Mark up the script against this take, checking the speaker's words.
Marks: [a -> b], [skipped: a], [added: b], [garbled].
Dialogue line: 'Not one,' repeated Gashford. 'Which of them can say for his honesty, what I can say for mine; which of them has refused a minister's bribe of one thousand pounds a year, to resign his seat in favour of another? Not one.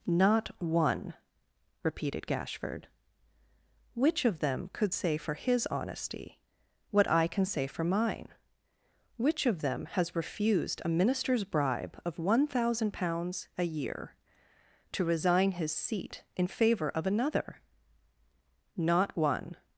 'Not one,' repeated Gashford. 'Which of them [can -> could] say for his honesty, what I can say for mine; which of them has refused a minister's bribe of one thousand pounds a year, to resign his seat in favour of another? Not one.